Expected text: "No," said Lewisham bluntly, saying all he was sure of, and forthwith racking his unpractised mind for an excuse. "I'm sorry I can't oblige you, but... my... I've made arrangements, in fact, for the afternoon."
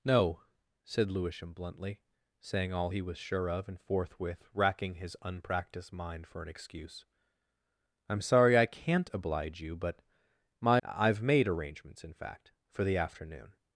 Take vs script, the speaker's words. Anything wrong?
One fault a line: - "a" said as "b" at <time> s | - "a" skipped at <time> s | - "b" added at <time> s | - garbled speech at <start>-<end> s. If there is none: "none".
none